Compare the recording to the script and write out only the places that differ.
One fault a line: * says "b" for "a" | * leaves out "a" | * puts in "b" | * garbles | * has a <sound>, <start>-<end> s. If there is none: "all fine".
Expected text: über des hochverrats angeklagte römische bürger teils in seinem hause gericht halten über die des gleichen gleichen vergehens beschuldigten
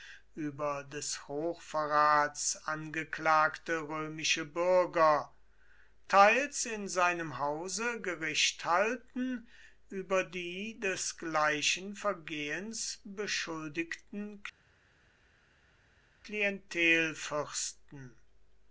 * leaves out "gleichen"